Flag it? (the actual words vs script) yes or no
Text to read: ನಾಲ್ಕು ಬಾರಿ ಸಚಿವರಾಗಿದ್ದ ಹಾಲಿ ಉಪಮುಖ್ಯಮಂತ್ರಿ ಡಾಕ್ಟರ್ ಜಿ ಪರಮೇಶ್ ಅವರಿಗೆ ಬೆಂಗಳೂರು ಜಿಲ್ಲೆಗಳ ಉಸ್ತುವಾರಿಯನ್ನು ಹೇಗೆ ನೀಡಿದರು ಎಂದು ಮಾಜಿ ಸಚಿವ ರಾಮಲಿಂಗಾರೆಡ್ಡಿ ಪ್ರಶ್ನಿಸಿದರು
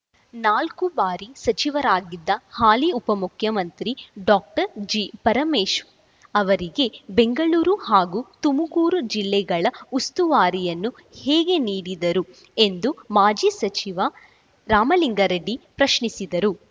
yes